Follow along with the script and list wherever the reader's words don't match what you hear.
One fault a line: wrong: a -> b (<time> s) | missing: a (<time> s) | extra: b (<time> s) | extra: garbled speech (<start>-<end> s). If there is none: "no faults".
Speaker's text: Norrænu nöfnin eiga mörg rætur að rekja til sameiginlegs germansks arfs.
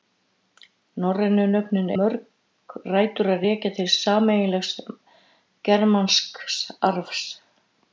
missing: eiga (1.9 s)